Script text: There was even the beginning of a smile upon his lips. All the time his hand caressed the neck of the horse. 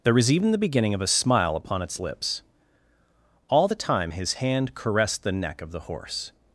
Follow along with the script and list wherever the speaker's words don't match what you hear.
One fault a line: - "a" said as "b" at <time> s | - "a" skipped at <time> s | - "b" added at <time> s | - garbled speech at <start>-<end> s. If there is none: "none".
- "his" said as "its" at 1.8 s